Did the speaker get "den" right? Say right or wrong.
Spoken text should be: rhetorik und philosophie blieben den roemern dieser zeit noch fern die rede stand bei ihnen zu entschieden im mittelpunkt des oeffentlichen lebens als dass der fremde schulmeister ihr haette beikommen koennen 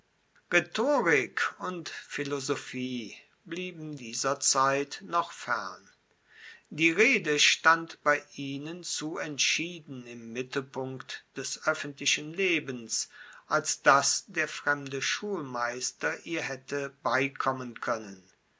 wrong